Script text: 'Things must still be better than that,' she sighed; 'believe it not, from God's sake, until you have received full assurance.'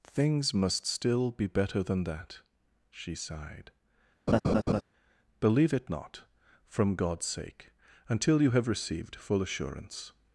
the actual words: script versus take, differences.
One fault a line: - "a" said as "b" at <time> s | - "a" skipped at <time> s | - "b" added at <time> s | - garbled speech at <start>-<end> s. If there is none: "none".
none